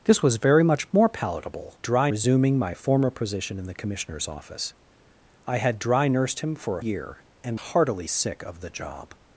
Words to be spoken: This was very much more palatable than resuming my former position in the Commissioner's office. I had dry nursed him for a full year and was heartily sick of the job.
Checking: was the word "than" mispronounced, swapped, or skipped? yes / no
yes